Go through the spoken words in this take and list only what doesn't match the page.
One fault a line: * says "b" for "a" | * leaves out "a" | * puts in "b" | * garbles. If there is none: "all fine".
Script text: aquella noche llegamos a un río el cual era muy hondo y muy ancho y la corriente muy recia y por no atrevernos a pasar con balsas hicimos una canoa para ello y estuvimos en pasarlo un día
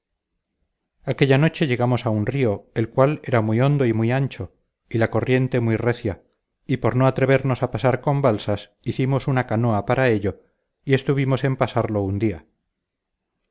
all fine